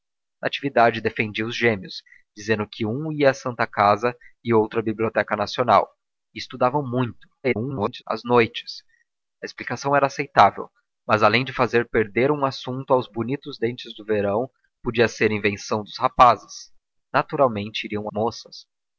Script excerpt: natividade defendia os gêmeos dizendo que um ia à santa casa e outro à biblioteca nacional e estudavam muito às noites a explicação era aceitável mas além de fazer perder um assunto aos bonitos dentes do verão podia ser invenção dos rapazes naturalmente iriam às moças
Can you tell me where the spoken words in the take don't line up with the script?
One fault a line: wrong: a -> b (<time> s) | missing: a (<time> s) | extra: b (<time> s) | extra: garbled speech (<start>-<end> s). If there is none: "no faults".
extra: garbled speech (7.4-8.0 s)
missing: às (18.1 s)